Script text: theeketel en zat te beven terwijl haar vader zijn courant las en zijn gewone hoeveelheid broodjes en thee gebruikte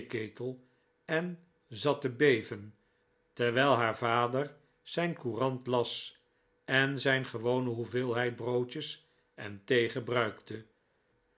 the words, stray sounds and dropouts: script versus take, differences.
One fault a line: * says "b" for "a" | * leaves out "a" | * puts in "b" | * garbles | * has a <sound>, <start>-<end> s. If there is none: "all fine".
all fine